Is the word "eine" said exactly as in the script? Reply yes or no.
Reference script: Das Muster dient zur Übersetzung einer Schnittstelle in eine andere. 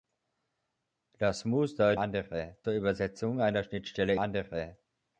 no